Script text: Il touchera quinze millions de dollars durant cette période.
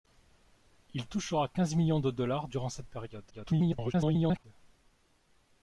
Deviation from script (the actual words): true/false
true